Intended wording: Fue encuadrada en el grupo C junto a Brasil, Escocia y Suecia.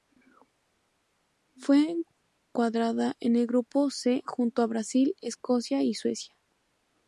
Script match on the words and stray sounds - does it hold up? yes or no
yes